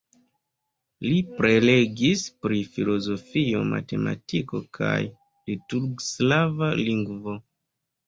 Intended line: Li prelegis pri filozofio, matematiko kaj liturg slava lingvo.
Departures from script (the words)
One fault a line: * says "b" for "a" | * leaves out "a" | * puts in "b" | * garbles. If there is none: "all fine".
all fine